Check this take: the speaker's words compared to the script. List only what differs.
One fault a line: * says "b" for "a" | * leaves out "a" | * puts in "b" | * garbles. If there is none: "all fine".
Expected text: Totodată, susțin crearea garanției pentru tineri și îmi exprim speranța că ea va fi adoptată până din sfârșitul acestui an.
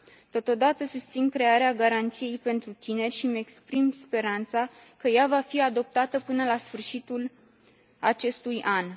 * says "la" for "din"